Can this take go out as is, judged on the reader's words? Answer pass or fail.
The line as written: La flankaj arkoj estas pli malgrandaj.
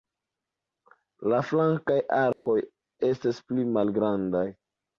pass